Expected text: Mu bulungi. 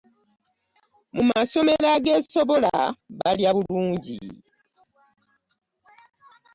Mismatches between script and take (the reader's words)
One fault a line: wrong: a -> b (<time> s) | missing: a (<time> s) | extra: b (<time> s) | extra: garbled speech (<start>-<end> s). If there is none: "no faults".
extra: masomero ageesobola balya (1.3 s)